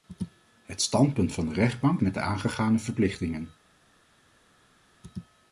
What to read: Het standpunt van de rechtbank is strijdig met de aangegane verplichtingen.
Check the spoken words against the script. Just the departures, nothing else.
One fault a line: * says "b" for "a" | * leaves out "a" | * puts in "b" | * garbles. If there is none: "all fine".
* leaves out "is strijdig"